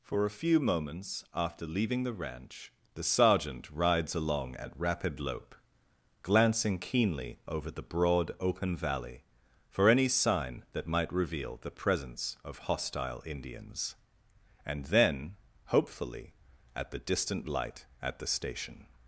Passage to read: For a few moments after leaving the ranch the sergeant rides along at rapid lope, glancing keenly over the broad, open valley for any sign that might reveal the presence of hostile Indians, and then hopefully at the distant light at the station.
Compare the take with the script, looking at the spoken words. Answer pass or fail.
pass